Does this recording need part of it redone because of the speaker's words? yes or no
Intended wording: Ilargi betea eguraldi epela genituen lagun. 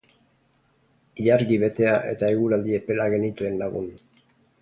yes